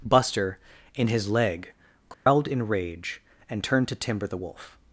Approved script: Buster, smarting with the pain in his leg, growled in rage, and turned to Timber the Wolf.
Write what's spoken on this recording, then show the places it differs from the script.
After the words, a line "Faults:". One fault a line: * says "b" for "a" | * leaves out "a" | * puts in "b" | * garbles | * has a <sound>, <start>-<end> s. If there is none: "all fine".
Buster, in his leg, growled in rage, and turned to Timber the Wolf.
Faults:
* leaves out "smarting with the pain"
* has a dropout, 2.1-2.3 s